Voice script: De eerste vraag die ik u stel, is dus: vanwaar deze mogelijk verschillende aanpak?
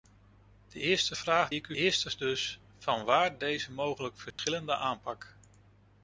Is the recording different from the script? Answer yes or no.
yes